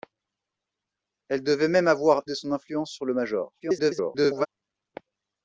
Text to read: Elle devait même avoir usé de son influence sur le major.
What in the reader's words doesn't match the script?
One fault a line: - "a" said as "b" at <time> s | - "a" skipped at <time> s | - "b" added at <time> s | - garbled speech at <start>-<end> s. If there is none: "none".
- "usé" skipped at 2.2 s
- garbled speech at 3.6-4.5 s